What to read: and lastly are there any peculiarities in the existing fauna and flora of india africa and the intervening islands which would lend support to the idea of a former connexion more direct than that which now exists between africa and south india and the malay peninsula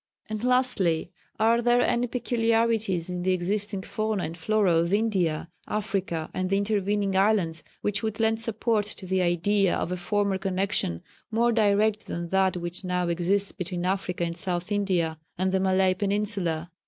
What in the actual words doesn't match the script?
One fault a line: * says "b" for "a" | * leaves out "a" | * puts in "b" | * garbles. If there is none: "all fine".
all fine